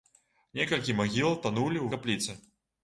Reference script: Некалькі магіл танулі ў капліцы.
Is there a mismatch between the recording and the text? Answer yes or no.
no